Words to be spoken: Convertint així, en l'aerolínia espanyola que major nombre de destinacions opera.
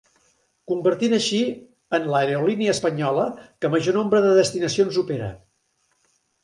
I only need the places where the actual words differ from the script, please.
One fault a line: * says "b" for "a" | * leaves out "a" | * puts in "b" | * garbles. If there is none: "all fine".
all fine